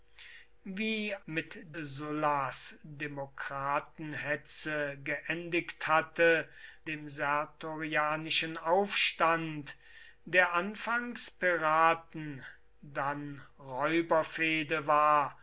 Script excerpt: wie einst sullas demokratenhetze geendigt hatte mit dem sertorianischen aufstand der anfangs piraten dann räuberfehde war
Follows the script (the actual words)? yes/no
no